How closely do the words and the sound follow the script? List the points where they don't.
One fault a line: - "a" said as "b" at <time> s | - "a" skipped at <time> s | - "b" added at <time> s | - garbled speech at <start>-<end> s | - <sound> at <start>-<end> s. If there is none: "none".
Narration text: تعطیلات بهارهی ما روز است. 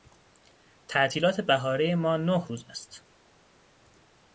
- "نه" added at 2.2 s